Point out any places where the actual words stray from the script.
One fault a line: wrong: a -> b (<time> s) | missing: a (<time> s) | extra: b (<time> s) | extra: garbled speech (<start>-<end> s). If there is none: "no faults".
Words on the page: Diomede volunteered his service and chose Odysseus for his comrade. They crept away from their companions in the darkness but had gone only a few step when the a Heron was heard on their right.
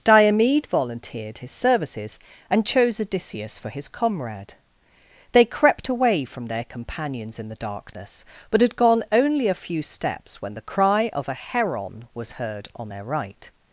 wrong: service -> services (1.5 s)
wrong: step -> steps (9.8 s)
extra: cry of (10.6 s)